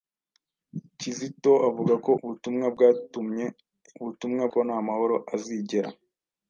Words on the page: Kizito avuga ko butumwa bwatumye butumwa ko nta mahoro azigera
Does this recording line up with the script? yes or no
yes